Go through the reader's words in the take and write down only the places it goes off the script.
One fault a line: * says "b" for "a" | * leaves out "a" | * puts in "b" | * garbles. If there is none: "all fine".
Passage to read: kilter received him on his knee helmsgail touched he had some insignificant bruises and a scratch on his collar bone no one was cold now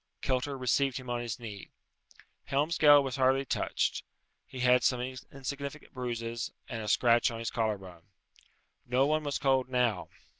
* puts in "was hardly"